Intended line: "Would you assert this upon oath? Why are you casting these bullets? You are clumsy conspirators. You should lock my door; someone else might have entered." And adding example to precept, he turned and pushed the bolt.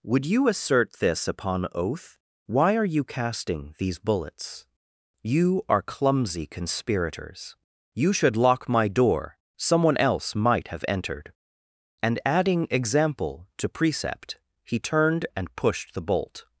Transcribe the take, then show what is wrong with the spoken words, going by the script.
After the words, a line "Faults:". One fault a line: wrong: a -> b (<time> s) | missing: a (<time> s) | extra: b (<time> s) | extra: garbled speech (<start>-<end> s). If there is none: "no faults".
"Would you assert this upon oath? Why are you casting these bullets? You are clumsy conspirators. You should lock my door; someone else might have entered." And adding example to precept, he turned and pushed the bolt.
Faults:
no faults